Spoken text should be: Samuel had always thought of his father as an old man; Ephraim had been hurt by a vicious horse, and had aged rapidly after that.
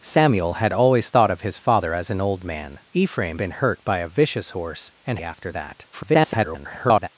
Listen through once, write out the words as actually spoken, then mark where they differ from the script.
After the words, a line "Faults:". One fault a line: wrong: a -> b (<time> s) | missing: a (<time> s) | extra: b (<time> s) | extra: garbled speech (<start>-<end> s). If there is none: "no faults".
Samuel had always thought of his father as an old man; Ephraim been hurt by a vicious horse, and after that. [garbled]
Faults:
missing: had (3.4 s)
missing: had aged rapidly (5.2 s)
extra: garbled speech (5.9-7.1 s)